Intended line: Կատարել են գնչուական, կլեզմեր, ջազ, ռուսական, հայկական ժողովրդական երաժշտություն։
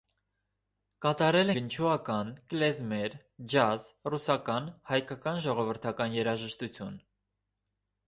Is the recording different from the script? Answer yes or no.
yes